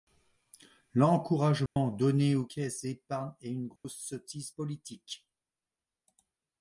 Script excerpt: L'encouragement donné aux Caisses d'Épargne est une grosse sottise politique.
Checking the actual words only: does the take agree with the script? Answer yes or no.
yes